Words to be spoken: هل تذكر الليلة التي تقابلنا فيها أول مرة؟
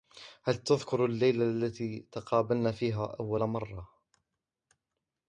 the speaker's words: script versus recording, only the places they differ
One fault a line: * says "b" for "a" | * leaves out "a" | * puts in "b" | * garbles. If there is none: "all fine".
all fine